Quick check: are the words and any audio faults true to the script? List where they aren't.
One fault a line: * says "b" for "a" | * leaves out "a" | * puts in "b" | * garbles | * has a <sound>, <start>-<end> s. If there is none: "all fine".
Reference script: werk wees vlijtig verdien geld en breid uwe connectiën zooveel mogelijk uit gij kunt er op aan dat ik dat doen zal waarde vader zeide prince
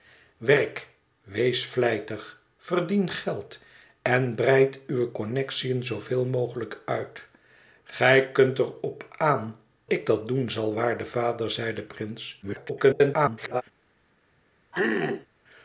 * leaves out "dat"
* garbles
* has a throat clearing, 14.7-15.3 s